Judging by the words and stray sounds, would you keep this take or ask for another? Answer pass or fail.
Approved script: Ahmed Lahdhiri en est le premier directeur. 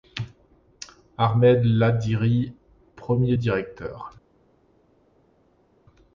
fail